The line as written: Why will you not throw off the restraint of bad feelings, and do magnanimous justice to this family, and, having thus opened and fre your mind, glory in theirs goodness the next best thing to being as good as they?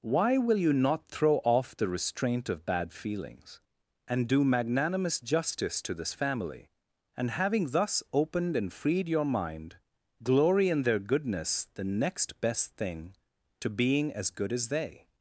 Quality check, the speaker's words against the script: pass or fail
fail